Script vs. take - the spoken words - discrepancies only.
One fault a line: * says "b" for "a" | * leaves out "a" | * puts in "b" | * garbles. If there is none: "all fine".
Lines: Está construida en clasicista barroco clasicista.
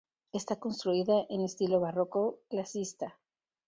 * says "estilo" for "clasicista"